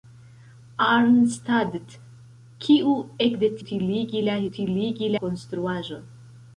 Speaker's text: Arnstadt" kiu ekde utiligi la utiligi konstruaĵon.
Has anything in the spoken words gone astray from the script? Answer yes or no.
no